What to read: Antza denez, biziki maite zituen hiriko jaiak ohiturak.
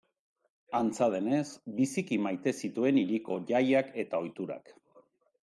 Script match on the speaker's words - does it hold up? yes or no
no